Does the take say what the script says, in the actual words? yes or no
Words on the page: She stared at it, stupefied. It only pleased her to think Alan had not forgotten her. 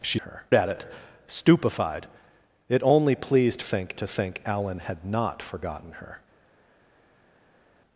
no